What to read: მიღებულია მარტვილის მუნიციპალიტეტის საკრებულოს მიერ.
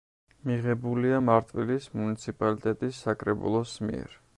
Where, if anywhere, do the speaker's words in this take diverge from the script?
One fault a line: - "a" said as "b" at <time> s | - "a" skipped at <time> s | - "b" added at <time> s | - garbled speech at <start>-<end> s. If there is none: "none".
none